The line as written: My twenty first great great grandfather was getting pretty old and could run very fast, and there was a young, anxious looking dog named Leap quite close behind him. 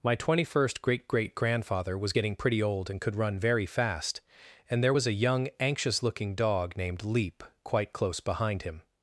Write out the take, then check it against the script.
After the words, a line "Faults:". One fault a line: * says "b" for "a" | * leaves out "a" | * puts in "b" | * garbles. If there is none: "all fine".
My twenty first great great grandfather was getting pretty old and could run very fast, and there was a young, anxious looking dog named Leap quite close behind him.
Faults:
all fine